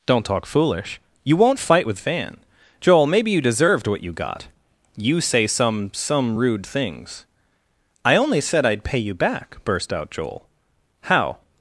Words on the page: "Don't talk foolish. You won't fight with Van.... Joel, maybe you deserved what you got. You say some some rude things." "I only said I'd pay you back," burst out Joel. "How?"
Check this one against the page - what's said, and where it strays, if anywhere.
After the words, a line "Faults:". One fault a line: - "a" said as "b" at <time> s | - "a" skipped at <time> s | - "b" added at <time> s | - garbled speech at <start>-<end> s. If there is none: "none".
"Don't talk foolish. You won't fight with Van.... Joel, maybe you deserved what you got. You say some some rude things." "I only said I'd pay you back," burst out Joel. "How?"
Faults:
none